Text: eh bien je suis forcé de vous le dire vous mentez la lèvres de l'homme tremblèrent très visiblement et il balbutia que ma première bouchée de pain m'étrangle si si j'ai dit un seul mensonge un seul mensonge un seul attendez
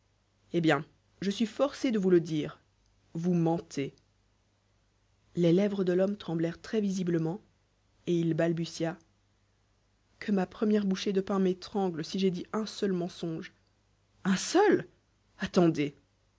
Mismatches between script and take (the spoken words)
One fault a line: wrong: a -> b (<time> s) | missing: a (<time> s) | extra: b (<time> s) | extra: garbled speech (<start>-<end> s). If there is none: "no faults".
wrong: la -> les (5.3 s)
missing: si (12.2 s)
missing: mensonge un seul (14.9 s)